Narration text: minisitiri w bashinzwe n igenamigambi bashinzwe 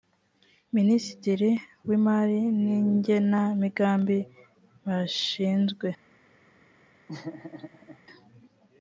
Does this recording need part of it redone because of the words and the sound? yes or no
yes